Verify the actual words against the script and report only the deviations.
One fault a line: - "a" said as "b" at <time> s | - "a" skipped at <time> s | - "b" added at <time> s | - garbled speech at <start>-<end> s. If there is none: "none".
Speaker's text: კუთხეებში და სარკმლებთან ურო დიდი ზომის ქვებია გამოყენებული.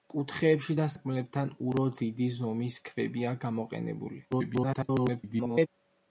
- garbled speech at 4.3-5.7 s